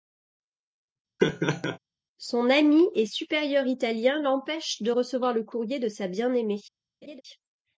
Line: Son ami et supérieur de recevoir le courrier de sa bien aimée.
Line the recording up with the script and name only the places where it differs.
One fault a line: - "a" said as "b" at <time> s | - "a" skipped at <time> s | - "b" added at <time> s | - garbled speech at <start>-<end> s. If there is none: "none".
- "italien l'empêche" added at 3.7 s